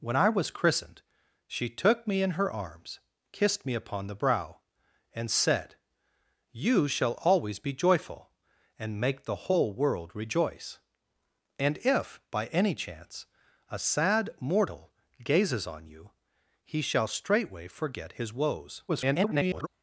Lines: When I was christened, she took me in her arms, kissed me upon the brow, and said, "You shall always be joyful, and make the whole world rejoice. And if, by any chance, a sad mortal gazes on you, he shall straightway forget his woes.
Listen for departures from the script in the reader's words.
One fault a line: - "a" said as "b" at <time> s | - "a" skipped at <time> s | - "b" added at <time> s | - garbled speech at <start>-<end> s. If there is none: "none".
- garbled speech at 18.9-19.7 s